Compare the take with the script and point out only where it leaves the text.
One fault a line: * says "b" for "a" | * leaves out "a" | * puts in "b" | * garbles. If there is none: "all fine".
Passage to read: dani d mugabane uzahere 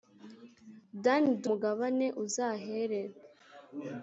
all fine